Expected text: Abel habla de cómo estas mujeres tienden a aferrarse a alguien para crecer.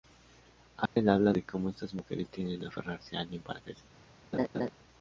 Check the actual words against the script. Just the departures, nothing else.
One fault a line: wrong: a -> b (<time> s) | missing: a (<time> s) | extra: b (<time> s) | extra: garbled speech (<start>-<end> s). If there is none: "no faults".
no faults